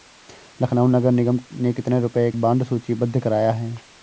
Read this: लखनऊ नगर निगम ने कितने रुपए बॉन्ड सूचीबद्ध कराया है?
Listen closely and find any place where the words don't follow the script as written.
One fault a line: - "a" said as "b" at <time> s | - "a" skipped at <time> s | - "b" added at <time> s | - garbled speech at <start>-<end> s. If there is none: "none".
none